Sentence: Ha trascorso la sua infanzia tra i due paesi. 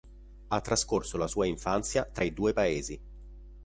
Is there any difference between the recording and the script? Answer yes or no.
no